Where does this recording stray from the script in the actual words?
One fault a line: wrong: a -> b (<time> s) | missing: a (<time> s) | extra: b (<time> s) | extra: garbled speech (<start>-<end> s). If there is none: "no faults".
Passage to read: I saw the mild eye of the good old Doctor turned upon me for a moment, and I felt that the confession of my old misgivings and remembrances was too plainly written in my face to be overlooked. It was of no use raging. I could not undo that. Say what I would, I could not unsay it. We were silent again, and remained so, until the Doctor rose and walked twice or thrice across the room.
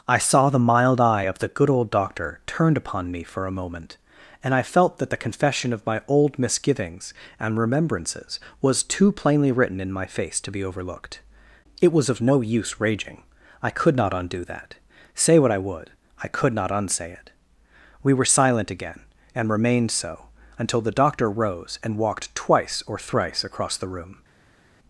no faults